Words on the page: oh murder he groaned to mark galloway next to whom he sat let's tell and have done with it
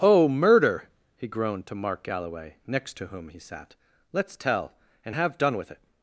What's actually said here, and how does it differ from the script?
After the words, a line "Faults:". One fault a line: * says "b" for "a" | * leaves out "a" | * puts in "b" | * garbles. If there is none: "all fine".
oh murder he groaned to mark galloway next to whom he sat let's tell and have done with it
Faults:
all fine